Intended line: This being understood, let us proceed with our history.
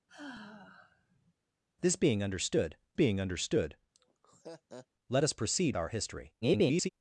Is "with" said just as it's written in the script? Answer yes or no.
no